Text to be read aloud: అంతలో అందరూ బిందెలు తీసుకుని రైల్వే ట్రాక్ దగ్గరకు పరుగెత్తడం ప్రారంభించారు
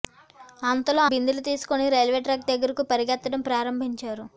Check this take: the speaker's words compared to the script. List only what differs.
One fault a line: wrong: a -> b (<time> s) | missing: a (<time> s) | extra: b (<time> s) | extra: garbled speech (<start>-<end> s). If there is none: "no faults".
missing: అందరూ (1.0 s)